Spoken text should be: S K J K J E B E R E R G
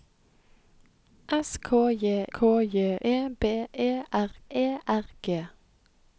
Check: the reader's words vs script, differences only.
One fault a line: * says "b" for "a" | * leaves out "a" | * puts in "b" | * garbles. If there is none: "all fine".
all fine